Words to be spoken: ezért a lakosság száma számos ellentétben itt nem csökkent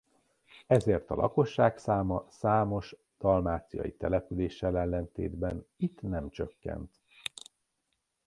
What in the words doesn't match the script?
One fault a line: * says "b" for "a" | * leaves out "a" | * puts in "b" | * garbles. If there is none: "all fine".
* puts in "dalmáciai településsel"